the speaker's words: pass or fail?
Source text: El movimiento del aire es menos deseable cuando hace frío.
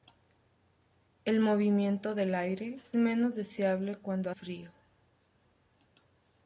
fail